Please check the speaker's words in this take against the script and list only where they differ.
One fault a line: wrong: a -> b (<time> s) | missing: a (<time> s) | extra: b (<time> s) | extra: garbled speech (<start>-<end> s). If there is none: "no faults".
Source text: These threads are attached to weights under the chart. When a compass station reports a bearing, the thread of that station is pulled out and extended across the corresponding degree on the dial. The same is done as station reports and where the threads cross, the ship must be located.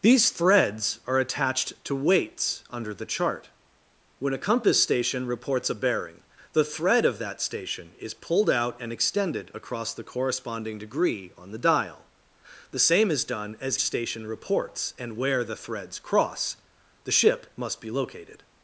no faults